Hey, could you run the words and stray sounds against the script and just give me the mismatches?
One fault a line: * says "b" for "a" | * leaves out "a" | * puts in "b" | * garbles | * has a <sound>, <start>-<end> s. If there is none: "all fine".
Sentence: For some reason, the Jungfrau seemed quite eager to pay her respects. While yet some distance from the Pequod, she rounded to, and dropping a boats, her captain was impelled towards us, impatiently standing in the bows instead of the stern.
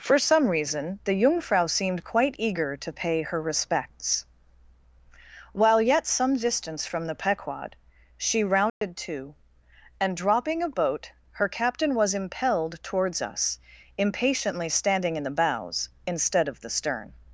* has a dropout, 8.7-8.8 s
* says "boat" for "boats"